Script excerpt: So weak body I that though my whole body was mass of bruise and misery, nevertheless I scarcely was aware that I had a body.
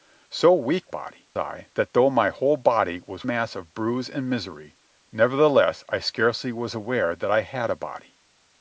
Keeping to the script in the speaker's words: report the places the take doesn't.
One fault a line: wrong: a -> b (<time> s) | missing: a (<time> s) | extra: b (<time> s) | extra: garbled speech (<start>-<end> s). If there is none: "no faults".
no faults